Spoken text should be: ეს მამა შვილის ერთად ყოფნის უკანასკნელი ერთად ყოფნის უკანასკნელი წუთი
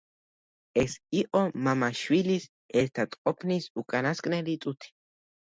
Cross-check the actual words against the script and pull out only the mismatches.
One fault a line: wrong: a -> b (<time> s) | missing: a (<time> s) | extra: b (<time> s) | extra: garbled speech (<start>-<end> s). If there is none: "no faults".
extra: იყო (1.2 s)
missing: ერთად ყოფნის უკანასკნელი (4.6 s)